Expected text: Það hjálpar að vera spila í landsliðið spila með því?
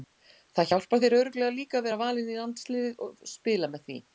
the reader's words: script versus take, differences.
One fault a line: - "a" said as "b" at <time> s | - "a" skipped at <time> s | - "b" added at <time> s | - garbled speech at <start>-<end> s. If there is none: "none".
- "þér örugglega líka" added at 1.0 s
- "spila" said as "valinn" at 2.0 s
- "og" added at 3.0 s